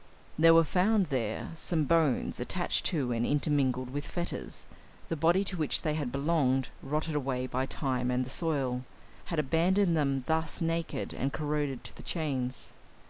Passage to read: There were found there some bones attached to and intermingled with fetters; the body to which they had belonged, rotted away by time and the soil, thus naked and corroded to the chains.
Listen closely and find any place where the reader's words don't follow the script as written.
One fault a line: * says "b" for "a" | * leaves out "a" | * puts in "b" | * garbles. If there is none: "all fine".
* puts in "had abandoned them"